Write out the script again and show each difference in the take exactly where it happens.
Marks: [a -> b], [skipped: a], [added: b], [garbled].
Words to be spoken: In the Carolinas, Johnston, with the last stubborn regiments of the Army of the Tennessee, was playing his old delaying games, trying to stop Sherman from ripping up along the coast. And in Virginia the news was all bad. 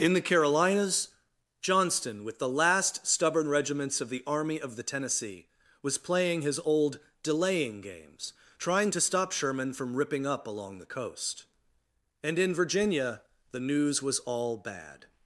In the Carolinas, Johnston, with the last stubborn regiments of the Army of the Tennessee, was playing his old delaying games, trying to stop Sherman from ripping up along the coast. And in Virginia the news was all bad.